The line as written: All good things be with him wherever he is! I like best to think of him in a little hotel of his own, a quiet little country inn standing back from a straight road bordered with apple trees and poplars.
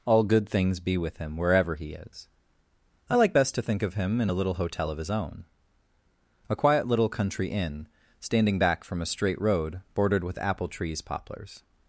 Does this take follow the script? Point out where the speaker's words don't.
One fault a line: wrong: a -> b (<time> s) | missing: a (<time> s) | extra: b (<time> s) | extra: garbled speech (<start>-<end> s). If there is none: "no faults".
missing: and (11.0 s)